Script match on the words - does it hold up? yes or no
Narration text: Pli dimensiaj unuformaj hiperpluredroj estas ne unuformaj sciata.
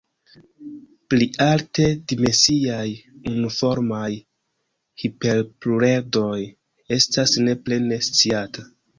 no